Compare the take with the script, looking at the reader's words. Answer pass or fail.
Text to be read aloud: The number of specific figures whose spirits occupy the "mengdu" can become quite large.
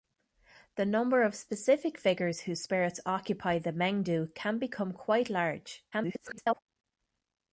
fail